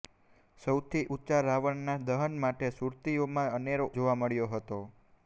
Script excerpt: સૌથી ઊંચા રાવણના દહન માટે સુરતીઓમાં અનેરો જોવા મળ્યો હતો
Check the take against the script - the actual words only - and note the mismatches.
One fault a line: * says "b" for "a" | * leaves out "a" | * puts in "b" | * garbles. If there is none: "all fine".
all fine